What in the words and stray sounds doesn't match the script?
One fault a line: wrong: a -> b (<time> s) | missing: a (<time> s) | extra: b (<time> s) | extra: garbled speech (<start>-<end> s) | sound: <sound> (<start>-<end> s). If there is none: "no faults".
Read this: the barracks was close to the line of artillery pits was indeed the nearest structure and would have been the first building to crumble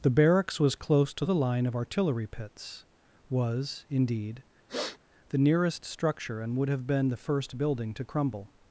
sound: sniff (4.7-5.0 s)